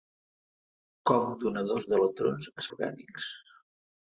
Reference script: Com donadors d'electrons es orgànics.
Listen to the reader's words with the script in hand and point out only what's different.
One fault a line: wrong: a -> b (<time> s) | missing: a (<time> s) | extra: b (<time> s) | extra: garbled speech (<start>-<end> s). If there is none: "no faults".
no faults